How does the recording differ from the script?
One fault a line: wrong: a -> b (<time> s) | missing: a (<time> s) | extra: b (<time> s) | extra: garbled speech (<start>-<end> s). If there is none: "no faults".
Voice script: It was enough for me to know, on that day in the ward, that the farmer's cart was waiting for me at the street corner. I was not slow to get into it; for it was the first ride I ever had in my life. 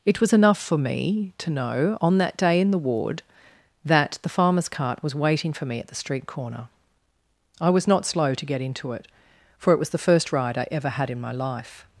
no faults